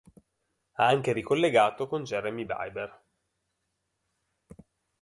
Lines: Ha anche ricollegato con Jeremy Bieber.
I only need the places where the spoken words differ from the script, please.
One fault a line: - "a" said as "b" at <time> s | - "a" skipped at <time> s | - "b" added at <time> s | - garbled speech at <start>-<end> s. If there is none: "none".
none